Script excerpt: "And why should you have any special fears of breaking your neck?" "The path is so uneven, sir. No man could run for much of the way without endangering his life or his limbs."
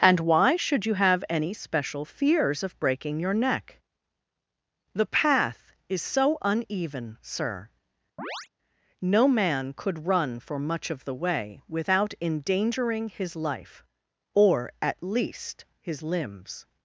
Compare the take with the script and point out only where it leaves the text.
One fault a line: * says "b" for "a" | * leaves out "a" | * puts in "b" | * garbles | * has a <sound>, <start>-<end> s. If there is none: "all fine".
* has a chirp, 8.2-8.5 s
* puts in "at least"